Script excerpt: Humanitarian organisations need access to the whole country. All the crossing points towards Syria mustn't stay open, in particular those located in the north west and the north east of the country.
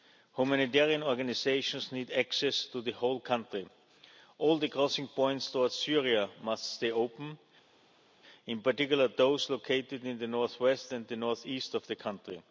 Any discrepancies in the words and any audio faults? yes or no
yes